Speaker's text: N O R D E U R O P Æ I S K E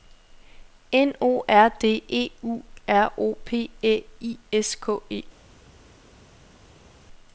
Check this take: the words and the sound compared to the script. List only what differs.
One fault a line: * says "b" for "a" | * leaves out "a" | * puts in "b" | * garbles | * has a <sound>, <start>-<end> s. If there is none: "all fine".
all fine